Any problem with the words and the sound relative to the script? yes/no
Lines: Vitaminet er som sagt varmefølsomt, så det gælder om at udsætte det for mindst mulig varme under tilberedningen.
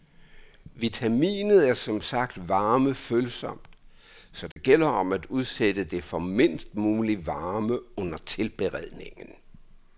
yes